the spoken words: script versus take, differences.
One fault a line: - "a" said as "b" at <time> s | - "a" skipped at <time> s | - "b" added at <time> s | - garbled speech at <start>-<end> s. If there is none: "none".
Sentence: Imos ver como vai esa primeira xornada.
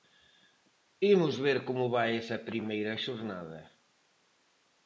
none